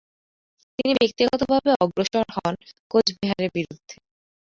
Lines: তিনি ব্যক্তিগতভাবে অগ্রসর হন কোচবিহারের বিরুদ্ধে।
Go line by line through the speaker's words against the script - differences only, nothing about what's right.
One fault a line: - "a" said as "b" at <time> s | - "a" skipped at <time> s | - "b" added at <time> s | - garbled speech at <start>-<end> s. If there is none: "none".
none